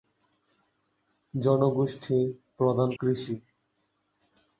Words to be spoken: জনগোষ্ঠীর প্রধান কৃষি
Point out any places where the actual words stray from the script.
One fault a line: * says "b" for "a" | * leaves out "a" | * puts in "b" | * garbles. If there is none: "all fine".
all fine